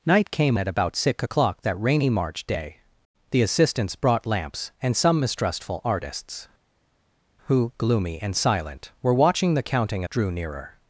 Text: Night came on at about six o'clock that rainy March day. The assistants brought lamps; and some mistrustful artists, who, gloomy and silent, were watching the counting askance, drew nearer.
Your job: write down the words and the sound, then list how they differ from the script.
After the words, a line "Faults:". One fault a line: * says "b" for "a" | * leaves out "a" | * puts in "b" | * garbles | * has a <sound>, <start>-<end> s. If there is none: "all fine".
Night came at about six o'clock that rainy March day. The assistants brought lamps; and some mistrustful artists, who, gloomy and silent, were watching the counting drew nearer.
Faults:
* leaves out "on"
* leaves out "askance"